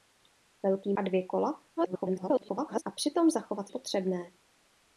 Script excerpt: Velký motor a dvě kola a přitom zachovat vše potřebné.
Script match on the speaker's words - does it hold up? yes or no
no